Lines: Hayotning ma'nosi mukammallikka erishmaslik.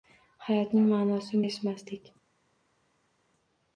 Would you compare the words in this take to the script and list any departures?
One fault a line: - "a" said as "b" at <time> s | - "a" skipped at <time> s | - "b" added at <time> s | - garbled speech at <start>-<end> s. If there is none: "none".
- "mukammallikka" skipped at 1.4 s